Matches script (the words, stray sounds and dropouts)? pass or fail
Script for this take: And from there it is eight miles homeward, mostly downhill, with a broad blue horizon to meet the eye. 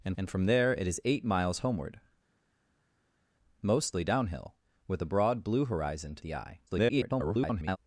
fail